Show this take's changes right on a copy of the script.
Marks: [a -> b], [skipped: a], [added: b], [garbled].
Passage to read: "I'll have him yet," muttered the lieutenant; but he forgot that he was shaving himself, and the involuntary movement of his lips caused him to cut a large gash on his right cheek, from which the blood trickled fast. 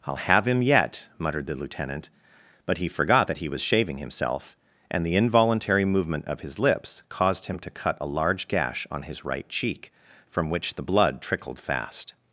"I'll have him yet," muttered the lieutenant; but he forgot that he was shaving himself, and the involuntary movement of his lips caused him to cut a large gash on his right cheek, from which the blood trickled fast.